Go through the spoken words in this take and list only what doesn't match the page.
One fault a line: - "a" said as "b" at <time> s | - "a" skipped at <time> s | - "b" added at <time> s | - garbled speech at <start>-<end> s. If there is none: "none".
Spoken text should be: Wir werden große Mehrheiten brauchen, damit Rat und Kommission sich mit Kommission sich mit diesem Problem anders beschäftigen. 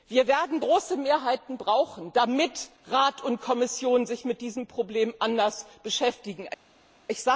- "Kommission sich mit" skipped at 4.4 s